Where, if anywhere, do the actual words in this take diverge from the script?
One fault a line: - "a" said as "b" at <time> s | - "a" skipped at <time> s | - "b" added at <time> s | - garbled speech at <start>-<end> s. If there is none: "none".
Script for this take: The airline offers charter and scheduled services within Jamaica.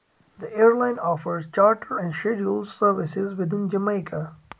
none